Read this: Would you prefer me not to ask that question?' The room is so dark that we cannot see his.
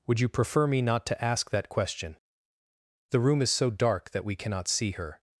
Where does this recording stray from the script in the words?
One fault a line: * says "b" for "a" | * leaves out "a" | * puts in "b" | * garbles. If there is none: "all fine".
* says "her" for "his"